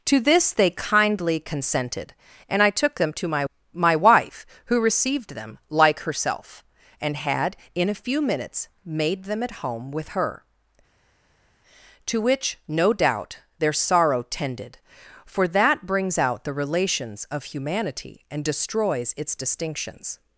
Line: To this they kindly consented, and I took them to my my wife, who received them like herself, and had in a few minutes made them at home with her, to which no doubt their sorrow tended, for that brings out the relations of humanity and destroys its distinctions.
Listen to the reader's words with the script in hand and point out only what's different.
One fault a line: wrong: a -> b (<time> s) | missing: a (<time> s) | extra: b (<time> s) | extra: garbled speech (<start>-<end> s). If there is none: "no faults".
no faults